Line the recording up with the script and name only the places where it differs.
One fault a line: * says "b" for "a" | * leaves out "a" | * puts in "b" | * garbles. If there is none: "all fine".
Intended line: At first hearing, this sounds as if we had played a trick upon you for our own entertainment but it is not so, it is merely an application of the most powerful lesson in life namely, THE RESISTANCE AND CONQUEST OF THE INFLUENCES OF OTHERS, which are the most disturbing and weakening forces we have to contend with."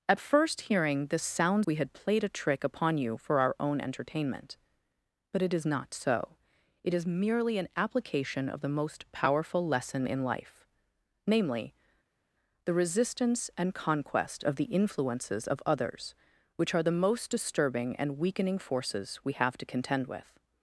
* leaves out "as if"